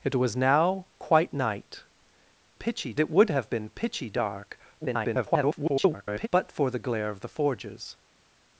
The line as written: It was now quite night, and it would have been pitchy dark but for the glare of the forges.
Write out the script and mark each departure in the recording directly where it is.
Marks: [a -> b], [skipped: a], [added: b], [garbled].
It was now quite night, [and -> pitchy] it would have been pitchy dark [garbled] but for the glare of the forges.